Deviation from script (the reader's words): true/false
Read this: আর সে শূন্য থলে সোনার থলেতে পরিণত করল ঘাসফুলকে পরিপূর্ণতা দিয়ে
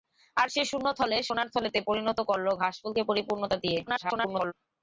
true